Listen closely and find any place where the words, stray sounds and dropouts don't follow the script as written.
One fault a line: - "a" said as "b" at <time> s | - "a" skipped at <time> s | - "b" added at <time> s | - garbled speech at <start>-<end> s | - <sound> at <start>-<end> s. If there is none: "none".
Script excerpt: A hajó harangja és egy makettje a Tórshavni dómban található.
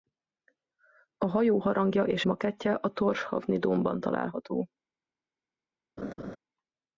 - "egy" skipped at 2.2 s
- laugh at 6.0-6.4 s